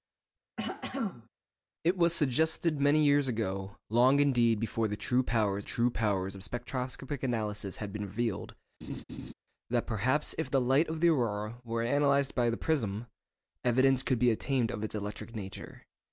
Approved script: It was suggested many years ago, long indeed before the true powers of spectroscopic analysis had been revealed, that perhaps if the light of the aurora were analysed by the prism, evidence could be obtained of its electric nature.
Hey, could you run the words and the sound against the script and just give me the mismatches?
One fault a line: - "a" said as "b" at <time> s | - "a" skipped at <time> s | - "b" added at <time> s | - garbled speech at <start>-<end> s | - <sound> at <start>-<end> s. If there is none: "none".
- throat clearing at 0.6-1.3 s
- "true powers" added at 5.6 s
- laugh at 8.8-9.3 s